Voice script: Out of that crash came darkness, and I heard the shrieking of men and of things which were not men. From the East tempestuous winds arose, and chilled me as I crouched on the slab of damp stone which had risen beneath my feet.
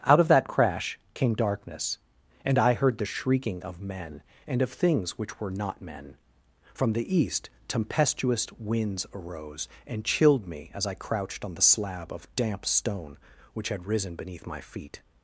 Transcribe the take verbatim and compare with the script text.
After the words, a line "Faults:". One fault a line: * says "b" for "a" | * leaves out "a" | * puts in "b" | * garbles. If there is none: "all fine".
Out of that crash came darkness, and I heard the shrieking of men and of things which were not men. From the East tempestuous winds arose, and chilled me as I crouched on the slab of damp stone which had risen beneath my feet.
Faults:
all fine